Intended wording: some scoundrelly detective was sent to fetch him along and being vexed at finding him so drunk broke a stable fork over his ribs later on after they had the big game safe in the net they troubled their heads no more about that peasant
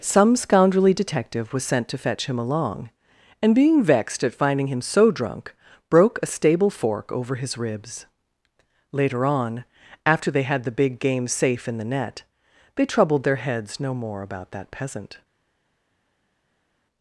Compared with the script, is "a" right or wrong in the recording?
right